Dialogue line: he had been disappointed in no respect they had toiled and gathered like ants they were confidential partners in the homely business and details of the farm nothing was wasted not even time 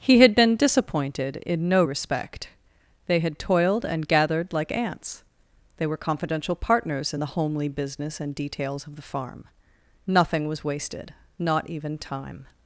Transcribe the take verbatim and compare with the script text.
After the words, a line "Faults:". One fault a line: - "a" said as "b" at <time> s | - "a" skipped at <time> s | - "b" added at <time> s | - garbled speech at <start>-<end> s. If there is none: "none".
he had been disappointed in no respect they had toiled and gathered like ants they were confidential partners in the homely business and details of the farm nothing was wasted not even time
Faults:
none